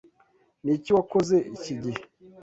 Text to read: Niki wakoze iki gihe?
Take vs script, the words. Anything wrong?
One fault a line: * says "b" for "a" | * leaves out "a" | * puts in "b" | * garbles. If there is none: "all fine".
all fine